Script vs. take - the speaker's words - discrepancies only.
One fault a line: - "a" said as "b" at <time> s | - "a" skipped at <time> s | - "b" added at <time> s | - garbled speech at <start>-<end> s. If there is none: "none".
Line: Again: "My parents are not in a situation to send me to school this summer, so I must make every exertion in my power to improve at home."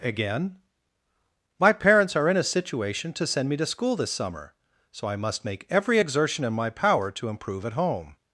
- "not" skipped at 2.3 s